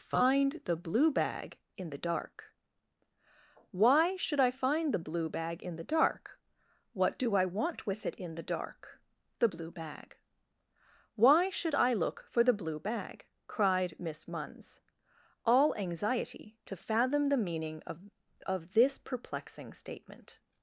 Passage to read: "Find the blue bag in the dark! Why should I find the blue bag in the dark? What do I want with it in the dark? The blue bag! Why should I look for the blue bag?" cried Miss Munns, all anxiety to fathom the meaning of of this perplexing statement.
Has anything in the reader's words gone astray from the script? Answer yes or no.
no